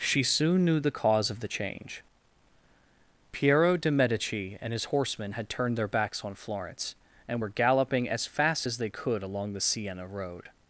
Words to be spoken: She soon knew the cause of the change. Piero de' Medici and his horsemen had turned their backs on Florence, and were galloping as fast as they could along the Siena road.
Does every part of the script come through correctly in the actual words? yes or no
yes